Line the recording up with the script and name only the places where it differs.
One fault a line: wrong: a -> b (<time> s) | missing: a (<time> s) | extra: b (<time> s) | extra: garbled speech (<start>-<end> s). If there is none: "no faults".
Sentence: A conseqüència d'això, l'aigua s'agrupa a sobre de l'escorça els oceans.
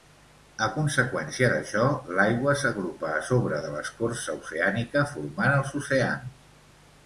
extra: oceànica formant (4.4 s)